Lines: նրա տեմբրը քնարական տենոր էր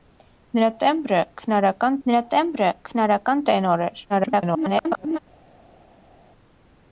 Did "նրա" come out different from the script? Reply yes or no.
no